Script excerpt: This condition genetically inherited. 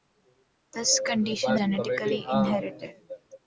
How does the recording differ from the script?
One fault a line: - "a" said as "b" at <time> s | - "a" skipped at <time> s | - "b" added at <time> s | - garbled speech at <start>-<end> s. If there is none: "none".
none